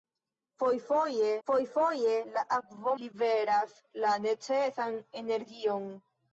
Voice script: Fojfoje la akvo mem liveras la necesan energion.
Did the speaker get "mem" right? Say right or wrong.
wrong